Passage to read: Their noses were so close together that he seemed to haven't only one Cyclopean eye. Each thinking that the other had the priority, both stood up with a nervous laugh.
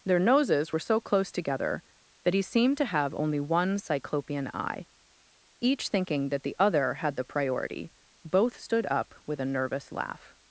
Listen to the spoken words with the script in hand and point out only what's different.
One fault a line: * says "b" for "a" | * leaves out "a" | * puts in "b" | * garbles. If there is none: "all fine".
* says "have" for "haven't"